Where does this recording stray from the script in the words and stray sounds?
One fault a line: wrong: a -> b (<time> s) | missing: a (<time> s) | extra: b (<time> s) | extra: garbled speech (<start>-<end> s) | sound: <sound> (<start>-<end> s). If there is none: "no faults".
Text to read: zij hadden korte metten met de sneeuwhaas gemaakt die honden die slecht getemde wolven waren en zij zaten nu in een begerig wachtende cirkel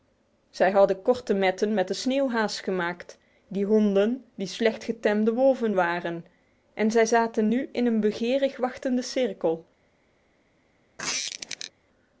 sound: squeak (11.0-11.7 s)